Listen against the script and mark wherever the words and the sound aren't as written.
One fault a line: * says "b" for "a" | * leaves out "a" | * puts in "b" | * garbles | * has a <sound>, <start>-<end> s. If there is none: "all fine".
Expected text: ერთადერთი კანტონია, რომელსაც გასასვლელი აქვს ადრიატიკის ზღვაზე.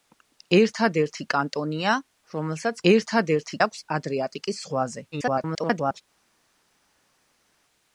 * says "ერთადერთი" for "გასასვლელი"
* garbles